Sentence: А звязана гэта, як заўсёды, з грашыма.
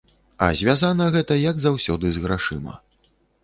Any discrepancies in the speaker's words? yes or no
no